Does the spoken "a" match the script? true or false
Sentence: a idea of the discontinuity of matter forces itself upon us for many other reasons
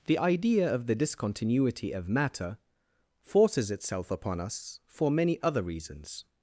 false